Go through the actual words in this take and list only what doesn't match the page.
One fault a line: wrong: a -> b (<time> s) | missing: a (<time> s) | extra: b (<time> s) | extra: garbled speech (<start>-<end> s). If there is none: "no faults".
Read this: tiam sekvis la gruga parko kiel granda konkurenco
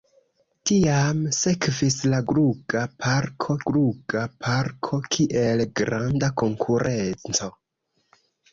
extra: gruga parko (3.7 s)